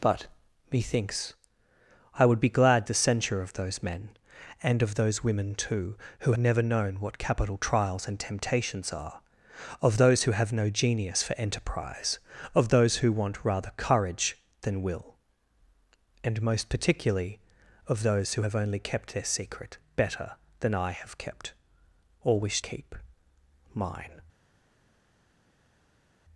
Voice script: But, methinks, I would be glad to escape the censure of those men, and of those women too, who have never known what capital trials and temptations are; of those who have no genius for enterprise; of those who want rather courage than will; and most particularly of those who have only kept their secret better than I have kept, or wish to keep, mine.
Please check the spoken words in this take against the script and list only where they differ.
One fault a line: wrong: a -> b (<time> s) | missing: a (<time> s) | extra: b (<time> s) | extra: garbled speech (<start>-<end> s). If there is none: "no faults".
missing: to escape (2.9 s)
missing: have (6.3 s)
missing: to (22.6 s)